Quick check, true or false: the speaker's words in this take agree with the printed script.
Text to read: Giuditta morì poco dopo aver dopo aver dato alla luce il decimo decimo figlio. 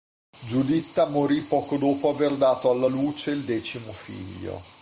false